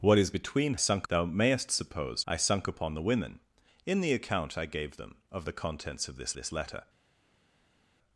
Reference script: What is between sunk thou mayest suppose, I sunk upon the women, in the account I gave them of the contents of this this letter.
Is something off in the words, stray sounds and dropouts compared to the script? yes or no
no